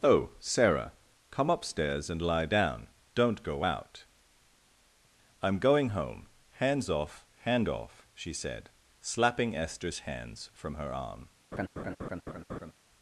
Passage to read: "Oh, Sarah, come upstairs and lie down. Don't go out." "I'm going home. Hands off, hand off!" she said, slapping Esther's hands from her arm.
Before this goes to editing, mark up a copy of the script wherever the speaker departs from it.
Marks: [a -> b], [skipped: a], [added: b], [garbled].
"Oh, Sarah, come upstairs and lie down. Don't go out." "I'm going home. Hands off, hand off!" she said, slapping Esther's hands from her arm.